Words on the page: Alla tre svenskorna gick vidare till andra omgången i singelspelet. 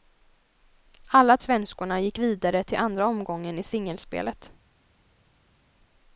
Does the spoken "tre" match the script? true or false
false